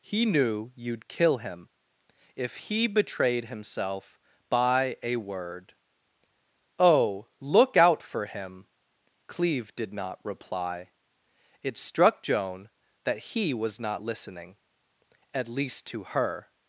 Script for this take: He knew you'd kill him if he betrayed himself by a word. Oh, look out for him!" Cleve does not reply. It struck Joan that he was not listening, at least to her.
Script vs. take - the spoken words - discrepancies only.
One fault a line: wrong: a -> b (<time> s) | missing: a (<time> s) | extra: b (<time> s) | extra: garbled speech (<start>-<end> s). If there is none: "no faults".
wrong: does -> did (9.8 s)